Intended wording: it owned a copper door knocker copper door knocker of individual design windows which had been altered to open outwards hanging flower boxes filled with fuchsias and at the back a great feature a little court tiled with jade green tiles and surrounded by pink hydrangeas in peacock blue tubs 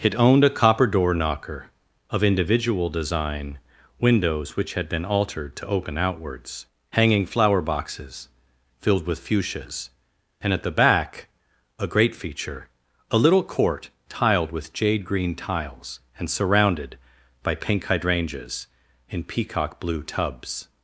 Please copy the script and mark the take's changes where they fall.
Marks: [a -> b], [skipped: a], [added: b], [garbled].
it owned a copper door knocker [skipped: copper door knocker] of individual design windows which had been altered to open outwards hanging flower boxes filled with fuchsias and at the back a great feature a little court tiled with jade green tiles and surrounded by pink hydrangeas in peacock blue tubs